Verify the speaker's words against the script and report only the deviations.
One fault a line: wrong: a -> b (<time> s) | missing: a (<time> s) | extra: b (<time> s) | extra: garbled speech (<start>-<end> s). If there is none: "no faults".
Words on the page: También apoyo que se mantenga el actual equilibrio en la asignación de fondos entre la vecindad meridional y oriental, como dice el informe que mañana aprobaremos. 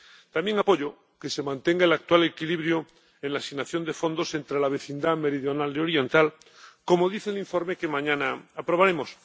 no faults